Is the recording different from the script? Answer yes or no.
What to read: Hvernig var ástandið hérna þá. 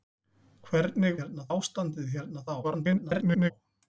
yes